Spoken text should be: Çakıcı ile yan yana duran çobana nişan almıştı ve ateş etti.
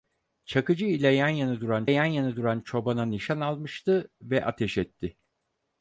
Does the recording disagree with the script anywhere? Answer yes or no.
yes